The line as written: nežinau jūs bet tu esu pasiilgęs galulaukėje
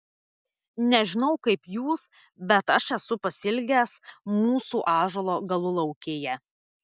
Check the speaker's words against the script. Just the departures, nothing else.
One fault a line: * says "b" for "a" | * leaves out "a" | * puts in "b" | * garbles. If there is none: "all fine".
* puts in "kaip"
* says "aš" for "tu"
* puts in "mūsų ąžuolo"